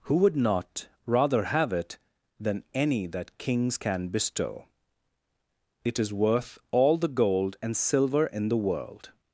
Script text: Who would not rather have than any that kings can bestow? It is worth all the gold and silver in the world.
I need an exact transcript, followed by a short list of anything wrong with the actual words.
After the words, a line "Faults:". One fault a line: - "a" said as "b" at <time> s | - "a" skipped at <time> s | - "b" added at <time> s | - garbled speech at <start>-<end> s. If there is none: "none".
Who would not rather have it than any that kings can bestow? It is worth all the gold and silver in the world.
Faults:
- "it" added at 1.7 s